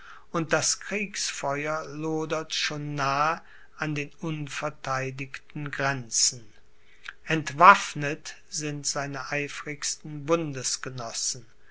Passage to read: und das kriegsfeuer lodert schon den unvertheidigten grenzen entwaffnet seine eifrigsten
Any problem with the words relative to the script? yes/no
yes